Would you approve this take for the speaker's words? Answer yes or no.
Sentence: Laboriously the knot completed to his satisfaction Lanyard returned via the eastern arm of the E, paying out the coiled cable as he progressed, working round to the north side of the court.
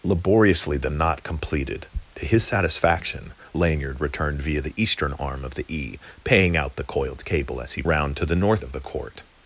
no